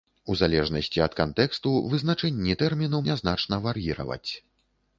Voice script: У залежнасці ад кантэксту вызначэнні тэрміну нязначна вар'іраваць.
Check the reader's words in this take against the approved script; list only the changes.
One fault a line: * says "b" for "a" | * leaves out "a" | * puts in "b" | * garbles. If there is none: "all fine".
all fine